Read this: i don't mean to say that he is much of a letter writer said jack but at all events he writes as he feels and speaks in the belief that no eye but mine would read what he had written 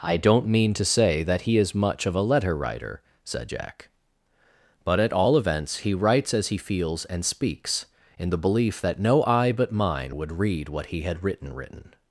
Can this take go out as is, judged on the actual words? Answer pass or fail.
fail